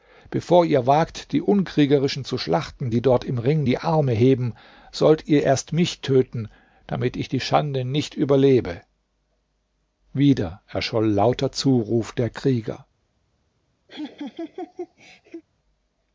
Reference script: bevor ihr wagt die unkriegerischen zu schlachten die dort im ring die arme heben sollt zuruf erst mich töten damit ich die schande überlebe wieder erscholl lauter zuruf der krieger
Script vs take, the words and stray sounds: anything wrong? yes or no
yes